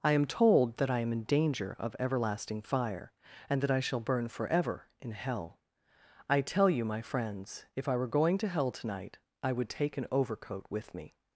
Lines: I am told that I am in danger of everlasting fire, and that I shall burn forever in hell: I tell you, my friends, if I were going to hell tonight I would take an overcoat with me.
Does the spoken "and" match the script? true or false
true